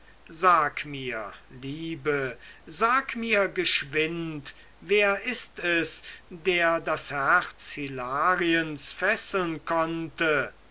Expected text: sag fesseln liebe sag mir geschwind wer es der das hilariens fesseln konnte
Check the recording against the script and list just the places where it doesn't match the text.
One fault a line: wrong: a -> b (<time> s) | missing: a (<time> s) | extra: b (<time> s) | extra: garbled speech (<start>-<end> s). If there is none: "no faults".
wrong: fesseln -> mir (0.8 s)
extra: ist (5.2 s)
extra: herz (7.1 s)